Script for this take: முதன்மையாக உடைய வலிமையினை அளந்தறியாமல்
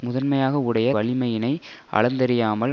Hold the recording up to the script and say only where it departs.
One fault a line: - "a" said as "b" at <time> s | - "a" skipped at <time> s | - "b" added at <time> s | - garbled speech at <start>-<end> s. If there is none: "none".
none